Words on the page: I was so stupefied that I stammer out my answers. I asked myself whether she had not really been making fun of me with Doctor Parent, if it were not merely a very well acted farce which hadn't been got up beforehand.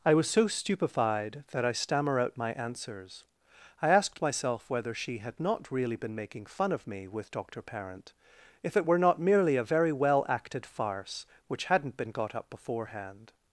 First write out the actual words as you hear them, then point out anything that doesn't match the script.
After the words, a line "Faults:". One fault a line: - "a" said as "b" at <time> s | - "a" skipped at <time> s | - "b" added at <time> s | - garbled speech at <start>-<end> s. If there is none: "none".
I was so stupefied that I stammer out my answers. I asked myself whether she had not really been making fun of me with Doctor Parent, if it were not merely a very well acted farce which hadn't been got up beforehand.
Faults:
none